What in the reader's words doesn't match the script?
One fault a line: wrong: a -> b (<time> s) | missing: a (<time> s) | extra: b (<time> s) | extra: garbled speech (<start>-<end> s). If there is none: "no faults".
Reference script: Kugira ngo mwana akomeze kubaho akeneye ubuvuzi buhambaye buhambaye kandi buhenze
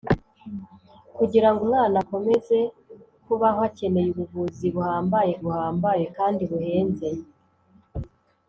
no faults